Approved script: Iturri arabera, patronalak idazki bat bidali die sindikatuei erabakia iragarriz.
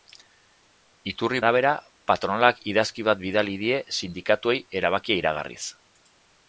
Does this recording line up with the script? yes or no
yes